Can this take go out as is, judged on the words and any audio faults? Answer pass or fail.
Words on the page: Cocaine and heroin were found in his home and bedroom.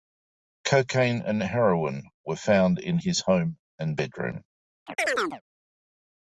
fail